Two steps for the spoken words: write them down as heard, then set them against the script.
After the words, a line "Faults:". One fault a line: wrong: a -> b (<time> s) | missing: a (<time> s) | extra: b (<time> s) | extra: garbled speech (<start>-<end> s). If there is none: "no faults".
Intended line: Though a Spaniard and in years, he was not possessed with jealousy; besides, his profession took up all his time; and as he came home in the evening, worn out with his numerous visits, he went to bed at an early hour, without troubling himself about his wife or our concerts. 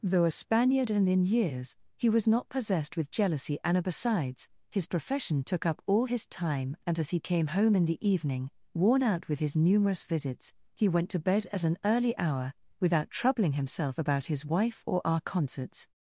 Though a Spaniard and in years, he was not possessed with jealousy; and besides, his profession took up all his time; and as he came home in the evening, worn out with his numerous visits, he went to bed at an early hour, without troubling himself about his wife or our concerts.
Faults:
extra: and (3.6 s)